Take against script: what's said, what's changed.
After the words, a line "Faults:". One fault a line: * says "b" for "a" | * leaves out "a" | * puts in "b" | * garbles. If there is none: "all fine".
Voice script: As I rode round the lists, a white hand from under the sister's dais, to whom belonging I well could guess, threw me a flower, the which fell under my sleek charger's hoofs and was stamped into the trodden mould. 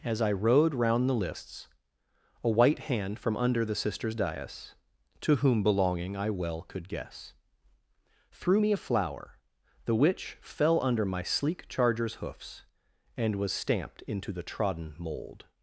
As I rode round the lists, a white hand from under the sister's dais, to whom belonging I well could guess, threw me a flower, the which fell under my sleek charger's hoofs and was stamped into the trodden mould.
Faults:
all fine